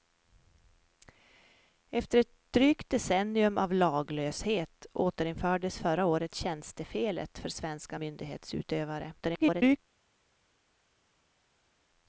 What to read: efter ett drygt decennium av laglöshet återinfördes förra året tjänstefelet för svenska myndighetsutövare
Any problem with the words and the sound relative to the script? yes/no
yes